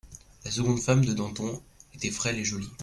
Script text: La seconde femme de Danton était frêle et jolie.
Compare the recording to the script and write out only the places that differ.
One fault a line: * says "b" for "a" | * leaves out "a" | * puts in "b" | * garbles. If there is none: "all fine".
all fine